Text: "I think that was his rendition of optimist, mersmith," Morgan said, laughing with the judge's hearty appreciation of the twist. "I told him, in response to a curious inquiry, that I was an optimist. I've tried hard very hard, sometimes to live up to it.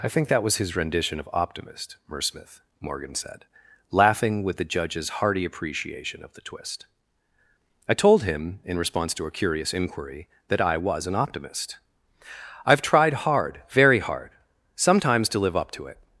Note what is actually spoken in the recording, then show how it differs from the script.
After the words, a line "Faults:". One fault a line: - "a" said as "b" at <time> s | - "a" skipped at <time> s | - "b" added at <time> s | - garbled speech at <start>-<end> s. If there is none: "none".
"I think that was his rendition of optimist, mersmith," Morgan said, laughing with the judge's hearty appreciation of the twist. "I told him, in response to a curious inquiry, that I was an optimist. I've tried hard very hard, sometimes to live up to it.
Faults:
none